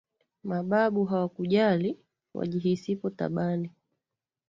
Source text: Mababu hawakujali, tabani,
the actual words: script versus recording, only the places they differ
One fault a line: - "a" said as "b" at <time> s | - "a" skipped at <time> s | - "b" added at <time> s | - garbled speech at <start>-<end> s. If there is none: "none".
- "wajihisipo" added at 2.3 s